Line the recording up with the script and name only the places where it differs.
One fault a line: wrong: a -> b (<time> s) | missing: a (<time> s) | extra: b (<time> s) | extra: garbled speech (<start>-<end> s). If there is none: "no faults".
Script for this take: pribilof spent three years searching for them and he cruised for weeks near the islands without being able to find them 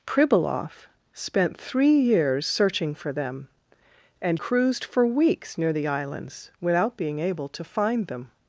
missing: he (4.4 s)